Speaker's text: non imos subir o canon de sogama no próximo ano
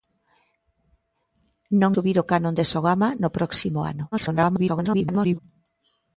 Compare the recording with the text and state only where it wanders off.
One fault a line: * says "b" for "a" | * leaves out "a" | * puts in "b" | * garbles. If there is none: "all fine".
* leaves out "imos"
* garbles